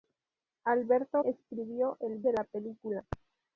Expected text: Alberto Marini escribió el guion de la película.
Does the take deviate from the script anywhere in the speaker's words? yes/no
yes